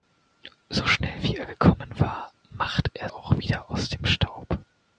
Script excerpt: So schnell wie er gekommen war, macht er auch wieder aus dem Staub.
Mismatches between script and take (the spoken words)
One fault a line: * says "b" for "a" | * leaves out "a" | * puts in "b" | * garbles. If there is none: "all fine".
all fine